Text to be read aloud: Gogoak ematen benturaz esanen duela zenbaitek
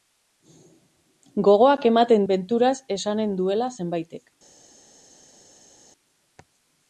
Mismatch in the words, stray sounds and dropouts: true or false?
false